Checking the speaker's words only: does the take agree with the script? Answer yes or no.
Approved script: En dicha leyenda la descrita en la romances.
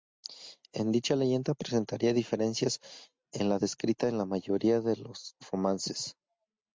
no